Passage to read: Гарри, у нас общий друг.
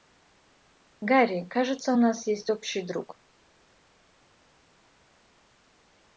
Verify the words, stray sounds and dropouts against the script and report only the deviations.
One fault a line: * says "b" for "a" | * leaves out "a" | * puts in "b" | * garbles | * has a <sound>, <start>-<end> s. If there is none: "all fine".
* puts in "кажется"
* puts in "есть"